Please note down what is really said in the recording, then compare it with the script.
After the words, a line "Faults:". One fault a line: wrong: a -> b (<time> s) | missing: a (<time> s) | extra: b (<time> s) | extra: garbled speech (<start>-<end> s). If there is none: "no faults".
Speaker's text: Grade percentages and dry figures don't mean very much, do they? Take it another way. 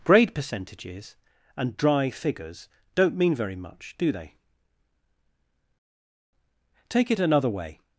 Grade percentages and dry figures don't mean very much, do they? Take it another way.
Faults:
no faults